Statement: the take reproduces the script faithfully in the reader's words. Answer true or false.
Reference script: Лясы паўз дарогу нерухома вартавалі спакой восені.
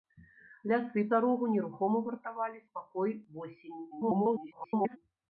false